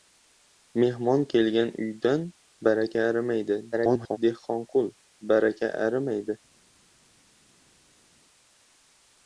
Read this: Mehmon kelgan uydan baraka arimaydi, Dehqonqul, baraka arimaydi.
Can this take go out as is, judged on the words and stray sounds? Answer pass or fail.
fail